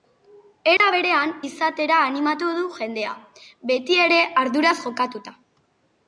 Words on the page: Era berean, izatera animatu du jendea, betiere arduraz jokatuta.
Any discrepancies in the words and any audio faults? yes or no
yes